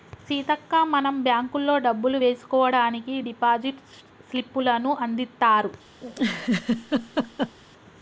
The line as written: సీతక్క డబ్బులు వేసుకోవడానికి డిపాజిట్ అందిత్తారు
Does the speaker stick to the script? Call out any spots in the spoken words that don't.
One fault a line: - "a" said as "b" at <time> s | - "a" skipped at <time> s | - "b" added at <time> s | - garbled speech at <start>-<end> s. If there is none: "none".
- "మనం బ్యాంకుల్లో" added at 0.9 s
- "స్లిప్పులను" added at 4.3 s